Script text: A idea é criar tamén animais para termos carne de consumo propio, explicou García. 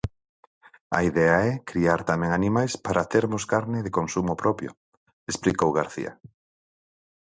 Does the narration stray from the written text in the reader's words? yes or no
no